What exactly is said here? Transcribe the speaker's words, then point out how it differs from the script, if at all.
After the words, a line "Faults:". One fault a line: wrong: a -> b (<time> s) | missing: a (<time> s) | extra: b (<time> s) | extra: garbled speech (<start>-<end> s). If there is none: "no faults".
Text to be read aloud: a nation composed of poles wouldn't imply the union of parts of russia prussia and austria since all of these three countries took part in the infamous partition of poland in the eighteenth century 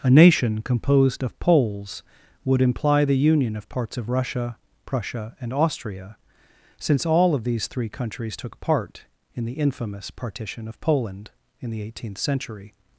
a nation composed of poles would imply the union of parts of russia prussia and austria since all of these three countries took part in the infamous partition of poland in the eighteenth century
Faults:
wrong: wouldn't -> would (2.4 s)